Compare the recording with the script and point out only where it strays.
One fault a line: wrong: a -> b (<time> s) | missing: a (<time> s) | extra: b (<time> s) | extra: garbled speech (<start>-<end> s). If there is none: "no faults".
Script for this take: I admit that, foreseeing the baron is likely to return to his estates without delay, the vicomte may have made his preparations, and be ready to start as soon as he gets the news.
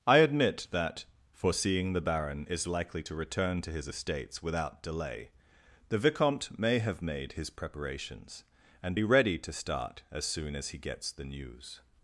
no faults